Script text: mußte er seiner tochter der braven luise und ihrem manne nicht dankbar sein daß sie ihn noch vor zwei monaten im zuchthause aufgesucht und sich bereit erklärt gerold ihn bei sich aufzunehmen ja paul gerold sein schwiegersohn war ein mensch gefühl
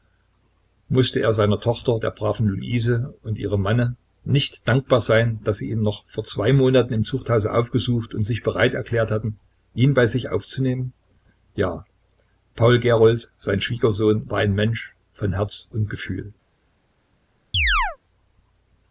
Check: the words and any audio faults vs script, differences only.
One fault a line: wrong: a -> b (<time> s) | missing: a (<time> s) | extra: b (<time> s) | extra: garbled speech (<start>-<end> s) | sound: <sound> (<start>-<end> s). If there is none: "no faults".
wrong: gerold -> hatten (9.1 s)
extra: von herz und (15.1 s)
sound: chirp (17.5-18.0 s)